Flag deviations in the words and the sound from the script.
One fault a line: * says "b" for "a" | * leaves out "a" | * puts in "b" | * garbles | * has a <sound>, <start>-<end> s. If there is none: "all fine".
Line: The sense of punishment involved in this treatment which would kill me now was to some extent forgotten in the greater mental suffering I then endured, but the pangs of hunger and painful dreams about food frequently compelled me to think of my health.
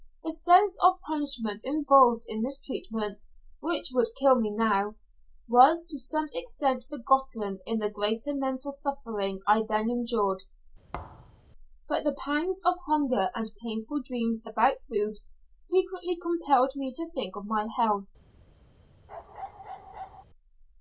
* has a thud, 10.9-11.4 s
* has a bark, 19.1-20.2 s